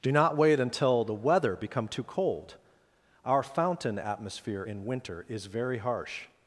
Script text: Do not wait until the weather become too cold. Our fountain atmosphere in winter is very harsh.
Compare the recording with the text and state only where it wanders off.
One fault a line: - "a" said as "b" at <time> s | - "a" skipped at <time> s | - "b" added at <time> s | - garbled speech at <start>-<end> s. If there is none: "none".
none